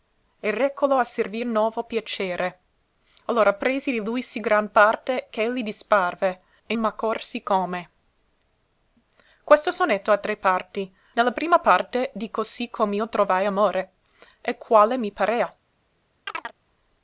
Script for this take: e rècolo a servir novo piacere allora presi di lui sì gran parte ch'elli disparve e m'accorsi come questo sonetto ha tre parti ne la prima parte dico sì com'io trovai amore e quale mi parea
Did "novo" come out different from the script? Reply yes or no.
no